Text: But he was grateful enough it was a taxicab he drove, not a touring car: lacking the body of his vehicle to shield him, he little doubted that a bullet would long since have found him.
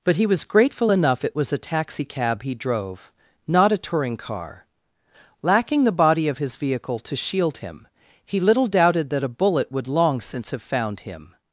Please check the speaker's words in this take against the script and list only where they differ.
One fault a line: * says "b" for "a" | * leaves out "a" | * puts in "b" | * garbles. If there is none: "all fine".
all fine